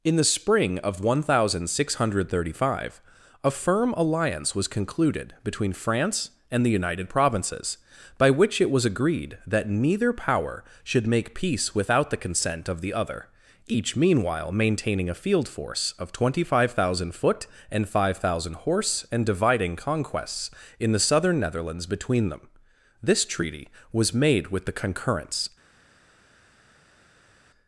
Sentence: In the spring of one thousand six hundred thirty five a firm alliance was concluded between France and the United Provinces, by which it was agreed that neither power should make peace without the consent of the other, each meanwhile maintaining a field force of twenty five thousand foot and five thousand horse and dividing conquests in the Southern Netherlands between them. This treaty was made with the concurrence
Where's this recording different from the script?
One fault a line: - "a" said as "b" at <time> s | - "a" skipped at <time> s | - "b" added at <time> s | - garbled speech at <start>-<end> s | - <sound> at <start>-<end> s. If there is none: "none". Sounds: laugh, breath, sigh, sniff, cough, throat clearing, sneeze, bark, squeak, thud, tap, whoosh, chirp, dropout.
none